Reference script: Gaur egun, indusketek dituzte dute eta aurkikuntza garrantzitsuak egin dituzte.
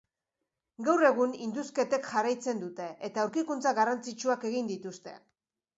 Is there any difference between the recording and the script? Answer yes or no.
yes